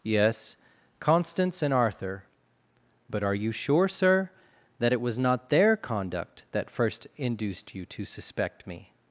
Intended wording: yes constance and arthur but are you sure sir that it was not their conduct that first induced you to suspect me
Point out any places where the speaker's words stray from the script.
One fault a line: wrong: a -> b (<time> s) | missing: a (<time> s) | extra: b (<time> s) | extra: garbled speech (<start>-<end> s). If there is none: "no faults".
no faults